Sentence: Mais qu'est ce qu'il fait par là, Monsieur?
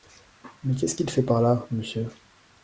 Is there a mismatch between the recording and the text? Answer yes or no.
no